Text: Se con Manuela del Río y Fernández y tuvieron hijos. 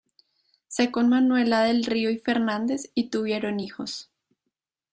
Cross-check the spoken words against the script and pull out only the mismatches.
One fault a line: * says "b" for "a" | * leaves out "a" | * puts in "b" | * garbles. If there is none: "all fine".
all fine